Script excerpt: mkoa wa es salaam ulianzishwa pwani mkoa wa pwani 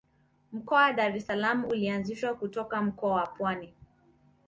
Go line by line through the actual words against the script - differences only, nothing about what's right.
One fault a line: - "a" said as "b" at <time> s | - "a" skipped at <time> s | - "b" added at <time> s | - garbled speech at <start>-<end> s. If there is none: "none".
- "dar" added at 0.9 s
- "pwani" said as "kutoka" at 2.3 s